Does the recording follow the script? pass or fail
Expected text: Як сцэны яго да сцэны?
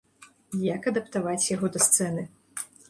fail